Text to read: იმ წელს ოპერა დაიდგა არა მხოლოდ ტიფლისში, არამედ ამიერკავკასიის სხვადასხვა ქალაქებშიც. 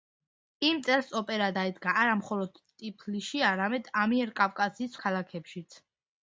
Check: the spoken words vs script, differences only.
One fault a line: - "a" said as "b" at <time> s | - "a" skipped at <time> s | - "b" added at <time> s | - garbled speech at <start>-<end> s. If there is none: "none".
- "სხვადასხვა" skipped at 5.0 s